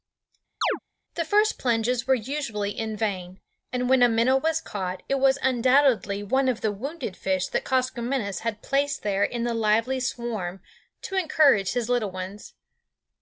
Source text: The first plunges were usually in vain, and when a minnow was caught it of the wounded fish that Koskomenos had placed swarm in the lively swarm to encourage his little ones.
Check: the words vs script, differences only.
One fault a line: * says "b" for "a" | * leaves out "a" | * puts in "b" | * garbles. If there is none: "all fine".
* puts in "was undoubtedly one"
* says "there" for "swarm"